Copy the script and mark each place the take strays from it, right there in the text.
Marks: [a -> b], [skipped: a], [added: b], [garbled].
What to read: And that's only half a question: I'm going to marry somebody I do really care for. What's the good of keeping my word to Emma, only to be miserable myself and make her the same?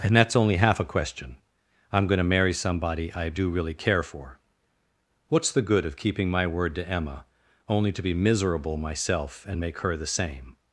And that's only half a question: I'm going to marry somebody I do really care for. What's the good of keeping my word to Emma, only to be miserable myself and make her the same?